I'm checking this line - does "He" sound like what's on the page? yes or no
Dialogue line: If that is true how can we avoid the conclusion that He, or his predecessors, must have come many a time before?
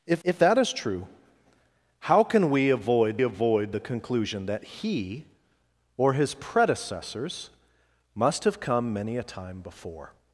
yes